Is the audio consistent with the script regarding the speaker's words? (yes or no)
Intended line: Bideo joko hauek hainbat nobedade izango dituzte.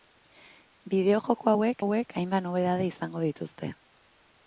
no